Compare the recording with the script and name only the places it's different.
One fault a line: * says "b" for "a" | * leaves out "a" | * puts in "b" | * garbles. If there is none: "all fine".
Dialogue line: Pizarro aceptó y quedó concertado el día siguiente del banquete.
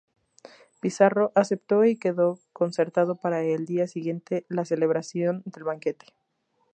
* puts in "para"
* puts in "la celebración"